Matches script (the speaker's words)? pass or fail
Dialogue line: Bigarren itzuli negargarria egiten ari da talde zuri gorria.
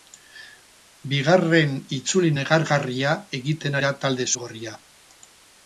fail